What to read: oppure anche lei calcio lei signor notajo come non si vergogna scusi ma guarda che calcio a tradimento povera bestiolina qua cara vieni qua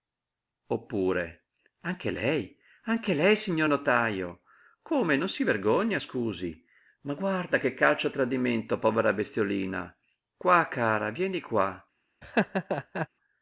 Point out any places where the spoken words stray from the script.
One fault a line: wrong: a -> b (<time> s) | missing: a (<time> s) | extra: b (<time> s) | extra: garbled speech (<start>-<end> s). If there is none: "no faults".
wrong: calcio -> anche (2.9 s)